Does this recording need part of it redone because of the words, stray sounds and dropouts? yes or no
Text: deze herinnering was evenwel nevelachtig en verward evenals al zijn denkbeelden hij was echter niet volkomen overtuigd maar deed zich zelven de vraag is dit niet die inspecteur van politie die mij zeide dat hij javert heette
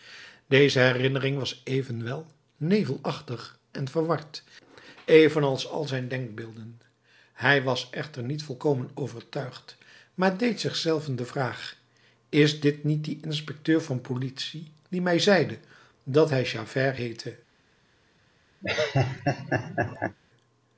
yes